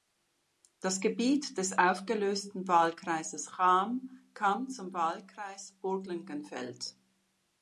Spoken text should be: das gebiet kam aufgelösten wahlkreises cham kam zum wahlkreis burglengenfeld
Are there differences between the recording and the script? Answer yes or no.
yes